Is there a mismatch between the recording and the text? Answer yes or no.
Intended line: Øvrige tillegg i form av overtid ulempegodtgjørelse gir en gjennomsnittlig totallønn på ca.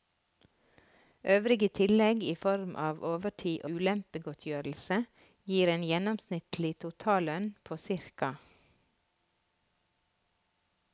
no